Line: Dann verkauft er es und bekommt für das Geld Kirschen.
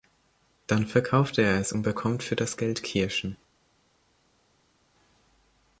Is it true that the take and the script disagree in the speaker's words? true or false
false